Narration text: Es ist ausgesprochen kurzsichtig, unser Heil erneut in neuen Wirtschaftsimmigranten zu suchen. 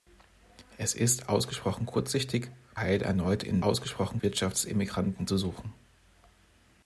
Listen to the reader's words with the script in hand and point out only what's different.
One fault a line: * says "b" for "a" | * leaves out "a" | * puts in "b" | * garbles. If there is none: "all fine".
* leaves out "unser"
* says "ausgesprochen" for "neuen"